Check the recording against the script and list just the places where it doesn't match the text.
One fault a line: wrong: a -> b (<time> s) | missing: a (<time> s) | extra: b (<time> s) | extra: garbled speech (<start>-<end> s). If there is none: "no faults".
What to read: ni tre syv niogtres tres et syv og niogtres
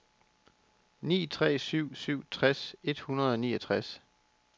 wrong: niogtres -> syv (1.9 s)
wrong: syv -> hundrede (3.0 s)